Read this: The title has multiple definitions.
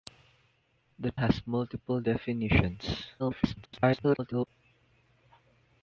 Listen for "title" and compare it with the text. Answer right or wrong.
wrong